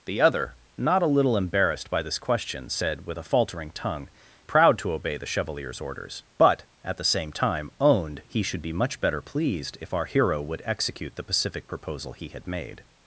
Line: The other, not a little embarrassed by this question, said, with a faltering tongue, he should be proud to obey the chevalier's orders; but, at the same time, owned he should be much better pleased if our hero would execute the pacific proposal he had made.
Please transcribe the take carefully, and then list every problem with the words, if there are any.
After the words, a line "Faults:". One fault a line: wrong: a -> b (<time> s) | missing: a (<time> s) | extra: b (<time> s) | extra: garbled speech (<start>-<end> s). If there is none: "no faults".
The other, not a little embarrassed by this question, said, with a faltering tongue, proud to obey the chevalier's orders; but, at the same time, owned he should be much better pleased if our hero would execute the pacific proposal he had made.
Faults:
missing: he should be (4.1 s)